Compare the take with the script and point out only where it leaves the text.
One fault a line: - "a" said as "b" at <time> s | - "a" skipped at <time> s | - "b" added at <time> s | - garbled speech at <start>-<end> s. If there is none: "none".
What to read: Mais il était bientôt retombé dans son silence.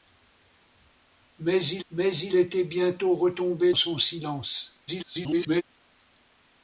- "mais il" added at 1.9 s
- "dans" skipped at 3.7 s
- garbled speech at 4.9-5.6 s